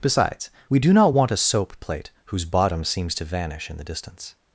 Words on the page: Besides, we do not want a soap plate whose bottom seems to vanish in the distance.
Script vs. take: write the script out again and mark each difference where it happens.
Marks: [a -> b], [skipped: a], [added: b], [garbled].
Besides, we do not want a soap plate whose bottom seems to vanish in the distance.